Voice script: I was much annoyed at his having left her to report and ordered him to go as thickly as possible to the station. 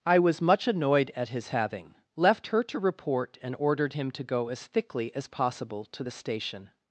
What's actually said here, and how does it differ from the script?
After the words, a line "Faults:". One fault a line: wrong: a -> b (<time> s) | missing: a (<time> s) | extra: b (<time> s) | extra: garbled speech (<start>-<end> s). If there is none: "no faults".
I was much annoyed at his having left her to report and ordered him to go as thickly as possible to the station.
Faults:
no faults